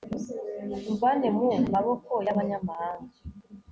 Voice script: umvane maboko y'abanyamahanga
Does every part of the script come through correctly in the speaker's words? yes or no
no